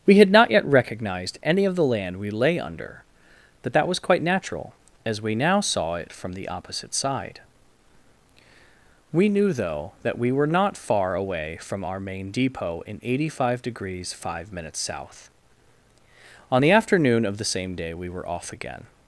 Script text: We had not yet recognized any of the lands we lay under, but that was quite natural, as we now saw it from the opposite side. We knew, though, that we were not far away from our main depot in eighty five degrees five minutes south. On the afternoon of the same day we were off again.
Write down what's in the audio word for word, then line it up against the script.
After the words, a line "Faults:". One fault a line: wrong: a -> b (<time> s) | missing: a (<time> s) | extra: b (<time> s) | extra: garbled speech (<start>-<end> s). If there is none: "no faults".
We had not yet recognized any of the land we lay under, but that was quite natural, as we now saw it from the opposite side. We knew, though, that we were not far away from our main depot in eighty five degrees five minutes south. On the afternoon of the same day we were off again.
Faults:
wrong: lands -> land (1.8 s)